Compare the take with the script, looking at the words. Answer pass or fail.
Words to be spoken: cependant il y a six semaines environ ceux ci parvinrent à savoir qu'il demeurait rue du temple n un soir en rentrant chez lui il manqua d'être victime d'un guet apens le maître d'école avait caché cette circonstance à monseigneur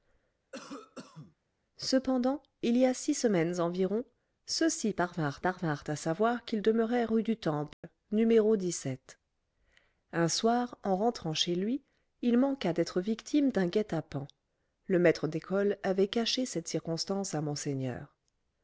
fail